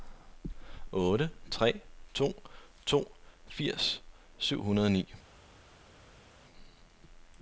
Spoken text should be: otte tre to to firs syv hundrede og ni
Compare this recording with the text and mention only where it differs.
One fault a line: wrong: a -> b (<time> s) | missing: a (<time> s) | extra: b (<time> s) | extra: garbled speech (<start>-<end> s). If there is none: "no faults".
no faults